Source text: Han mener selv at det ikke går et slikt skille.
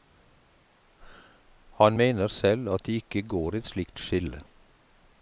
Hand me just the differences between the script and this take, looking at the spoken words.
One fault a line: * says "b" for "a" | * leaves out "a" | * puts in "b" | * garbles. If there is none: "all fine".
all fine